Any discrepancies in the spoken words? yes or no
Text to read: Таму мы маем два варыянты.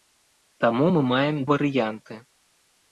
yes